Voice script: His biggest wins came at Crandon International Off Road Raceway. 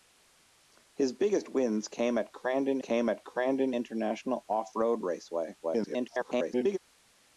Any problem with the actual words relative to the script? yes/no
yes